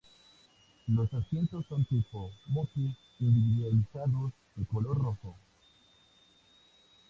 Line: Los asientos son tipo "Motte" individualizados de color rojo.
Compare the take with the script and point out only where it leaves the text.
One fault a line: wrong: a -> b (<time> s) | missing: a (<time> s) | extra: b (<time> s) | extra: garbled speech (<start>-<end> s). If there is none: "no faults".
no faults